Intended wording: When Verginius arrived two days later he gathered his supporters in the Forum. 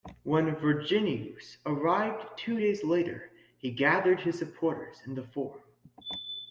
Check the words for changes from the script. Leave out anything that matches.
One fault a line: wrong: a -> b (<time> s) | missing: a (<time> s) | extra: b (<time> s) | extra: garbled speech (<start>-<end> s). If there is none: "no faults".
no faults